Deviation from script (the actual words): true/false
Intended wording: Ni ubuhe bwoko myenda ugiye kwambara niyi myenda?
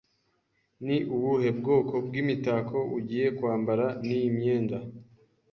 true